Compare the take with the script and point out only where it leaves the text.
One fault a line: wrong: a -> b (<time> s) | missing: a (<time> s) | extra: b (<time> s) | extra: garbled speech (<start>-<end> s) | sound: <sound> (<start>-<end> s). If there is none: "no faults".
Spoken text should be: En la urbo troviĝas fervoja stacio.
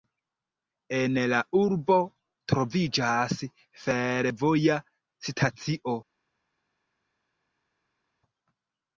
no faults